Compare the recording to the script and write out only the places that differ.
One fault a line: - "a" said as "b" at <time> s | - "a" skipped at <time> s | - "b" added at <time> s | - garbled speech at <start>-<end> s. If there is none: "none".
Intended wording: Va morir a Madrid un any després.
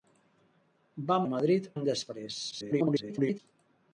- "morir" skipped at 1.2 s
- "un" skipped at 1.7 s
- garbled speech at 2.5-3.4 s